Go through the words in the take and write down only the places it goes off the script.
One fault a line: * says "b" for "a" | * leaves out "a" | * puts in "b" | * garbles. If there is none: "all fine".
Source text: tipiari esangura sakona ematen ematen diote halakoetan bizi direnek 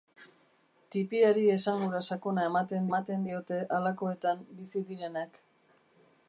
all fine